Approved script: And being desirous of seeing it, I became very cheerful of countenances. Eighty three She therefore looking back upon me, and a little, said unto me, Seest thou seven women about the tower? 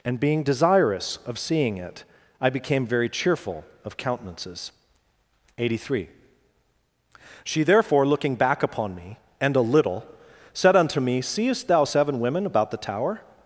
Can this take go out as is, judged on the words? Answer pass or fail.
pass